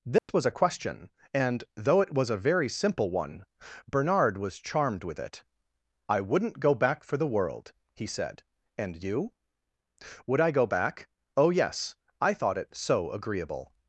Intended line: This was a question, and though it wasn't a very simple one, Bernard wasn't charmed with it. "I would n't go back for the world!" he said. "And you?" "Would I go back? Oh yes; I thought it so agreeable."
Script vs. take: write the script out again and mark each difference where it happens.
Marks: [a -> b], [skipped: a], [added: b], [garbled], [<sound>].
This [dropout] was a question, and though it [wasn't -> was] a very simple one, Bernard [wasn't -> was] charmed with it. "I would n't go back for the world!" he said. "And you?" "Would I go back? Oh yes; I thought it so agreeable."